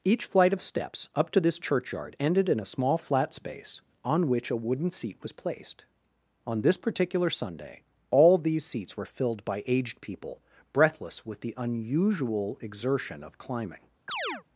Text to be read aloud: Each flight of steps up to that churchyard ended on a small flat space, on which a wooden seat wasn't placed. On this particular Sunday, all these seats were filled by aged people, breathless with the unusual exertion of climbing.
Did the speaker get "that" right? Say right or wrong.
wrong